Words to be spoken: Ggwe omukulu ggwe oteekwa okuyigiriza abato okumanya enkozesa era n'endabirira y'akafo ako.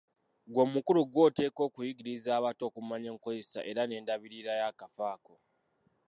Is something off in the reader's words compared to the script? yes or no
no